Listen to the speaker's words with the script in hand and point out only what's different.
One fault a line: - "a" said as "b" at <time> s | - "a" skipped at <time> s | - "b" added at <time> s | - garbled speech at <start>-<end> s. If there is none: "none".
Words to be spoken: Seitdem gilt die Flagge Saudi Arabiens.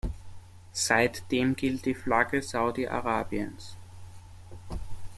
none